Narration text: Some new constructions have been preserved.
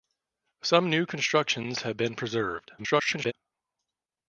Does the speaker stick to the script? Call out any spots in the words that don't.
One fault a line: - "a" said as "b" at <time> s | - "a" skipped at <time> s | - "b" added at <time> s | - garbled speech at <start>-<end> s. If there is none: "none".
- garbled speech at 2.8-3.3 s